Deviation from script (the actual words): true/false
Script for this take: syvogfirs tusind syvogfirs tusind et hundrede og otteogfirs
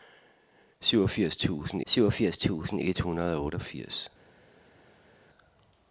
false